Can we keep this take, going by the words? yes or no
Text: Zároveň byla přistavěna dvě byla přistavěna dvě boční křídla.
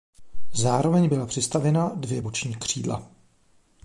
no